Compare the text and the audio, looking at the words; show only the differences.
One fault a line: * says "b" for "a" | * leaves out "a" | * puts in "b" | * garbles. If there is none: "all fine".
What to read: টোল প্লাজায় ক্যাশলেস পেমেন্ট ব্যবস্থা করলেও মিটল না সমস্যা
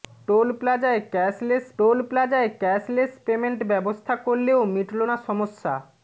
* puts in "টোল প্লাজায় ক্যাশলেস"